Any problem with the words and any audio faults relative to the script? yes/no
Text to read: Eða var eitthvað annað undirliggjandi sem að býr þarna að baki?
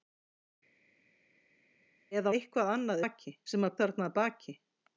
yes